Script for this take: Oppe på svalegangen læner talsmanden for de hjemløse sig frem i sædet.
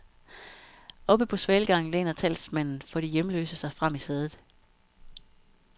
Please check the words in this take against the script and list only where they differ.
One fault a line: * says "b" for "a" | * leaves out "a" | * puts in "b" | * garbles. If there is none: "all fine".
all fine